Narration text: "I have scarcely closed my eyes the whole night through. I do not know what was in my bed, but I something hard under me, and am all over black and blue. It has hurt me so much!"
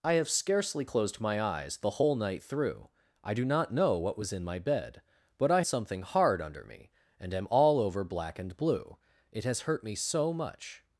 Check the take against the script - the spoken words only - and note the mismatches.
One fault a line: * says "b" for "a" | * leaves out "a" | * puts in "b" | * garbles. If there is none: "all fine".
all fine